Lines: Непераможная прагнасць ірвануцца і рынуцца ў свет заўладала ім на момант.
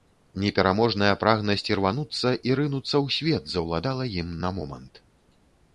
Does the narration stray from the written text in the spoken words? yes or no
no